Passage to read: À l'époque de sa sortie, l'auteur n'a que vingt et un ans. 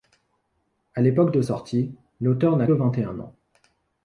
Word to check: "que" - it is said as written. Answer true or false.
false